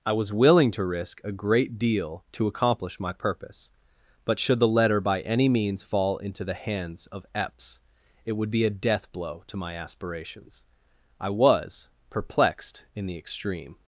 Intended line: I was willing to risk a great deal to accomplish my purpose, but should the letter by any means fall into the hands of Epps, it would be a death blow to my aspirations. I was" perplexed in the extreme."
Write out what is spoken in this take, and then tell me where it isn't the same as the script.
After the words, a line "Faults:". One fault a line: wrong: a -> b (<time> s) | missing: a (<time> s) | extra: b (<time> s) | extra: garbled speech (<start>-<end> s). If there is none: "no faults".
I was willing to risk a great deal to accomplish my purpose, but should the letter by any means fall into the hands of Epps, it would be a death blow to my aspirations. I was" perplexed in the extreme."
Faults:
no faults